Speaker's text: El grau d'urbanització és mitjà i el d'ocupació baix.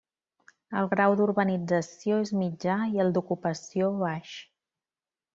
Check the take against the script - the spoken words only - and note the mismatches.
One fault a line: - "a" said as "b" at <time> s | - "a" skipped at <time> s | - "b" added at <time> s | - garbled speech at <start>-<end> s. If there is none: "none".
none